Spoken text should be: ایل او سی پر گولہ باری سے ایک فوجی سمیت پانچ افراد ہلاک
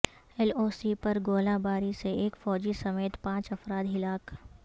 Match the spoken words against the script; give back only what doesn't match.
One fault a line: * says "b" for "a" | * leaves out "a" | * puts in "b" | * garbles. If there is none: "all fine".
all fine